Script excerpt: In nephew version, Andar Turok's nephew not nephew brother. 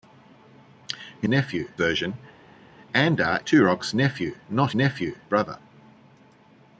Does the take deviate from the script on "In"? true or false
false